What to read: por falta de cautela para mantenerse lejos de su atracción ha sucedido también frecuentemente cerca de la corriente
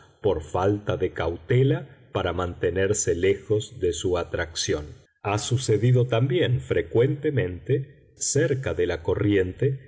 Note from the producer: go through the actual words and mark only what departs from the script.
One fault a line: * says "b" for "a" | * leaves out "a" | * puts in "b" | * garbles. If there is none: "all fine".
all fine